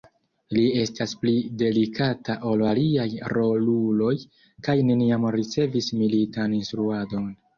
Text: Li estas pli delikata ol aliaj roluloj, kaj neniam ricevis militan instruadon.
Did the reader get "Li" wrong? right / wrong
right